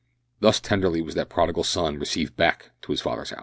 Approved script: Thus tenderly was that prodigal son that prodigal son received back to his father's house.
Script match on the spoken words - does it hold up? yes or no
no